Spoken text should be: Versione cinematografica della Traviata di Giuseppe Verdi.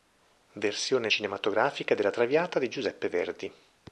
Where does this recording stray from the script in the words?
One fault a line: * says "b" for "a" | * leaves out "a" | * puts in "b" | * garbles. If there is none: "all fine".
all fine